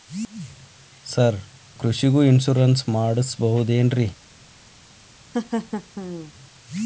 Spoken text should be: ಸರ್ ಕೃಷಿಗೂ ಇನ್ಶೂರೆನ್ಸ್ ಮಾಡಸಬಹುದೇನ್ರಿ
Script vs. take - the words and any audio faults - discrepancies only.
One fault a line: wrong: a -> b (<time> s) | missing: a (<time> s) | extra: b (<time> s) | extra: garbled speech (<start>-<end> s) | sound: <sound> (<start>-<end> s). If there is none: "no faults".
sound: laugh (5.3-6.3 s)